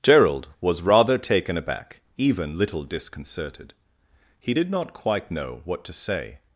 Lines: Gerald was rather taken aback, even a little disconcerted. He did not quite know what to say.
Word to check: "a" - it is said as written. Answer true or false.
false